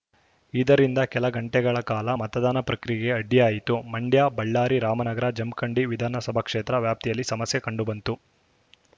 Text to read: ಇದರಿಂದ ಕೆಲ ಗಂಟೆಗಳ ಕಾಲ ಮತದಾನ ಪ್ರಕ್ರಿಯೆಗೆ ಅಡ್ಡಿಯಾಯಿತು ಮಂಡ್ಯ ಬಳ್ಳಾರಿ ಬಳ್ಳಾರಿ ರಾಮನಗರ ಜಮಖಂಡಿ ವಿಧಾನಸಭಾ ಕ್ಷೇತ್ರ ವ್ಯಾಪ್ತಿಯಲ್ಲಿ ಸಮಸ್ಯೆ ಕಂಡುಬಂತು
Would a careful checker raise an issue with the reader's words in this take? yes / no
yes